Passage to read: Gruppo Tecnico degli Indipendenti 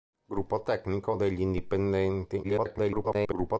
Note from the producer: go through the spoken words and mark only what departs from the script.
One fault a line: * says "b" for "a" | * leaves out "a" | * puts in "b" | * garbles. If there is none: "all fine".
* garbles